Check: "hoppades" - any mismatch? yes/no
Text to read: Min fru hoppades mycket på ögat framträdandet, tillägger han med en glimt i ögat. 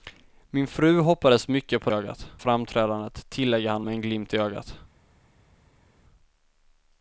no